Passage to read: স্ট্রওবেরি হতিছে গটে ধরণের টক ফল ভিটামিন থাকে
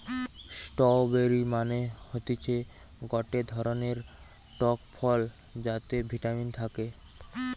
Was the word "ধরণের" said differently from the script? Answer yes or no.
no